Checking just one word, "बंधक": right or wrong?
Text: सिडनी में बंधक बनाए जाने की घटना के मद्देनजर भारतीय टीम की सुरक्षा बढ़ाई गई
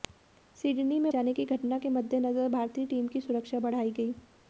wrong